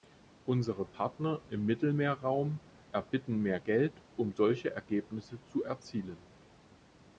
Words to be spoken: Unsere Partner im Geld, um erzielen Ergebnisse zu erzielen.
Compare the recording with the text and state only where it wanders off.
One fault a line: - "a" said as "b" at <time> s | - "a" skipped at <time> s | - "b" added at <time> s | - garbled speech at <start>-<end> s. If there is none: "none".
- "Mittelmeerraum erbitten mehr" added at 1.7 s
- "erzielen" said as "solche" at 4.3 s